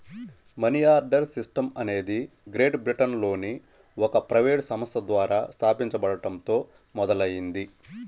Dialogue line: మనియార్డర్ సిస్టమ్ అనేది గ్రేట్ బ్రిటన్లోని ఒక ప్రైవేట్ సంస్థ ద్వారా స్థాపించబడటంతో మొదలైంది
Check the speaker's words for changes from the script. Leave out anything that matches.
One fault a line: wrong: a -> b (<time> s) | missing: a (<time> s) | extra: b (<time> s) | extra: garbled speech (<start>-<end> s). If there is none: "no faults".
no faults